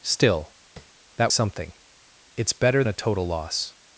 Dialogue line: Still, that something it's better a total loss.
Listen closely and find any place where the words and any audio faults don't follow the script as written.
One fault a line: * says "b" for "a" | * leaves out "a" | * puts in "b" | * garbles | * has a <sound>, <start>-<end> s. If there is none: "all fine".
* has a tap, 0.8-0.9 s